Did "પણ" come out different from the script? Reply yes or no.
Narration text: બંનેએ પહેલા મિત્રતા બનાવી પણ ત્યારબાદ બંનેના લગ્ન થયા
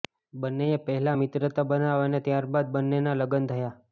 yes